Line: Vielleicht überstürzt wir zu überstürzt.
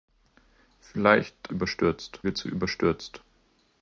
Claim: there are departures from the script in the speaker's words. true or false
false